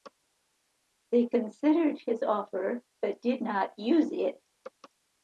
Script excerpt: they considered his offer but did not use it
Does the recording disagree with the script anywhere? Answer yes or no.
no